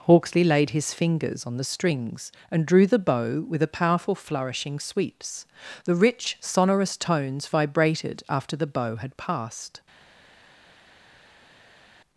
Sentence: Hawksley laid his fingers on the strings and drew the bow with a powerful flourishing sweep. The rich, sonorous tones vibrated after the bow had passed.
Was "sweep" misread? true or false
true